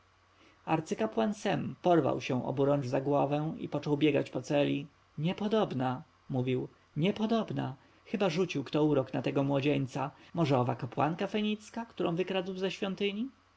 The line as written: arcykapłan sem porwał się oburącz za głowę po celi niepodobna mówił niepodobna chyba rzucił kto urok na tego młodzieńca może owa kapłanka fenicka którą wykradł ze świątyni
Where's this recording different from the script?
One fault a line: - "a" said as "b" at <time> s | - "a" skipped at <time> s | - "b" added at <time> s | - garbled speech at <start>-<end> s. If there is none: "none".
- "i począł biegać" added at 3.6 s